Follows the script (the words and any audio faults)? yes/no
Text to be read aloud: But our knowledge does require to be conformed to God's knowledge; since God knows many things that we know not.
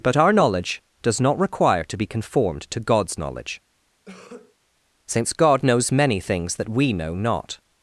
no